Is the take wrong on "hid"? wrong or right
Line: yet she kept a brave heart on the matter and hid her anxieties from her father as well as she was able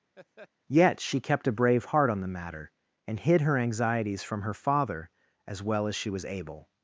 right